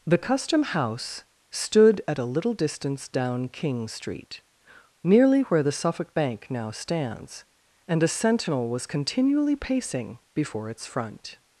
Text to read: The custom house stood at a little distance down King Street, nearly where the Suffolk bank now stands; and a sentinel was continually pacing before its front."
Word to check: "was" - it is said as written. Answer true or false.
true